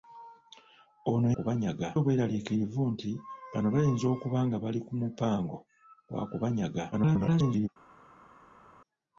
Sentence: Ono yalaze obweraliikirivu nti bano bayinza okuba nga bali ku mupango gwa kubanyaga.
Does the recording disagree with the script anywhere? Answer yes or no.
yes